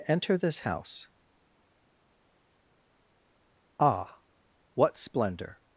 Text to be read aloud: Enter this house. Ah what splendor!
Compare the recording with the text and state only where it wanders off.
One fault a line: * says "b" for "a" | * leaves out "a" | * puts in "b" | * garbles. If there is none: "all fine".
all fine